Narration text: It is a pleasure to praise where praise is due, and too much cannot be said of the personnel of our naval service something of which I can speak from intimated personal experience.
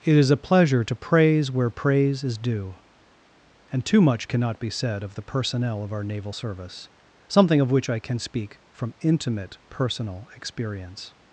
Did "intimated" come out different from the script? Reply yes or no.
yes